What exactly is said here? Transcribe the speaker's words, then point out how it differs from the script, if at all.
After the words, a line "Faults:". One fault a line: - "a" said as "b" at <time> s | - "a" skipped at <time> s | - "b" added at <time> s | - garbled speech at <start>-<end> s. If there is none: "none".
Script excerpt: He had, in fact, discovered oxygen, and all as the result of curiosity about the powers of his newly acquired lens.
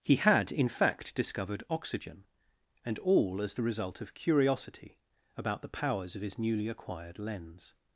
He had, in fact, discovered oxygen, and all as the result of curiosity about the powers of his newly acquired lens.
Faults:
none